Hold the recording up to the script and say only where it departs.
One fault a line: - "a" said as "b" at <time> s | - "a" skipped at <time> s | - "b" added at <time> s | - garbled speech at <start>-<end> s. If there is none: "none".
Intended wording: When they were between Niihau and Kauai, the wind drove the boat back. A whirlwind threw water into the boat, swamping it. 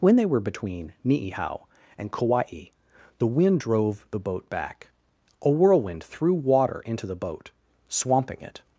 none